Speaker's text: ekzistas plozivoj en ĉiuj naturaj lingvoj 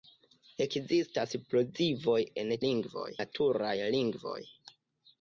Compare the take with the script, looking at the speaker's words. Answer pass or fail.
fail